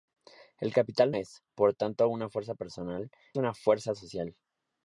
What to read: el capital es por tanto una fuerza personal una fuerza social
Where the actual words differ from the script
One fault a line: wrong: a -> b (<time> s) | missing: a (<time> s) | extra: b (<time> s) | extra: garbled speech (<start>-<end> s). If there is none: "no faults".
no faults